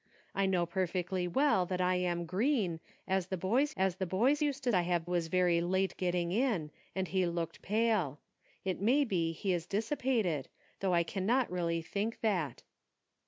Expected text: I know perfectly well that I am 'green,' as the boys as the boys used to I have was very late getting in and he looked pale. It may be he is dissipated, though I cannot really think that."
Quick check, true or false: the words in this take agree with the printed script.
true